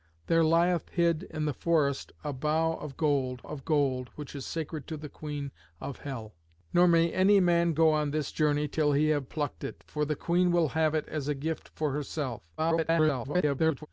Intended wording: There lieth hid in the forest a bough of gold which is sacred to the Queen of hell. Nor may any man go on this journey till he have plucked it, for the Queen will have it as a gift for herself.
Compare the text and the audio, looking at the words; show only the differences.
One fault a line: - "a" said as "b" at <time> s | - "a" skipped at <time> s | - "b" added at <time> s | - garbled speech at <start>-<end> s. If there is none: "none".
- "of gold" added at 3.4 s
- garbled speech at 12.6-13.9 s